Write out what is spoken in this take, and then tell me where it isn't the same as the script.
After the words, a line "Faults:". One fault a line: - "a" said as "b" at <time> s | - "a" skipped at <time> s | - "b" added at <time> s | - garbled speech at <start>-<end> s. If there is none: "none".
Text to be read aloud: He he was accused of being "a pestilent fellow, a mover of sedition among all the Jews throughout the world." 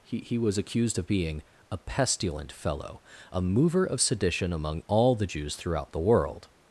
He he was accused of being "a pestilent fellow, a mover of sedition among all the Jews throughout the world."
Faults:
none